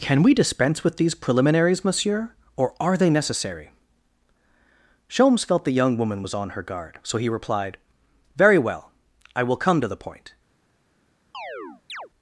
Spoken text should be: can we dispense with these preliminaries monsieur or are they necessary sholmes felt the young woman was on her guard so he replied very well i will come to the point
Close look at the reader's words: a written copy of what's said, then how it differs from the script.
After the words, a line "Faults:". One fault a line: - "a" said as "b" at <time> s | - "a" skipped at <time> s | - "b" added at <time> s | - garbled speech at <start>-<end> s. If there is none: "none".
can we dispense with these preliminaries monsieur or are they necessary sholmes felt the young woman was on her guard so he replied very well i will come to the point
Faults:
none